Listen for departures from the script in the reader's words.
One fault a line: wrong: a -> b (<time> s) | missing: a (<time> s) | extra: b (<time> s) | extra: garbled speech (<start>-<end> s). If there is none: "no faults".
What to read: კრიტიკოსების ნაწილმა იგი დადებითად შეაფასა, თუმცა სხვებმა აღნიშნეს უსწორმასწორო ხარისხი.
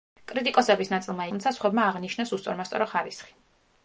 missing: იგი დადებითად შეაფასა (1.3 s)